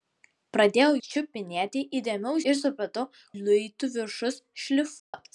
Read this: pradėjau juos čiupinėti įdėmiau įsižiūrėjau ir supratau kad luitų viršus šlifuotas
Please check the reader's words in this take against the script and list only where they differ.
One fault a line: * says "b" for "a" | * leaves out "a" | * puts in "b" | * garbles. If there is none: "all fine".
* leaves out "juos"
* leaves out "įsižiūrėjau"
* leaves out "kad"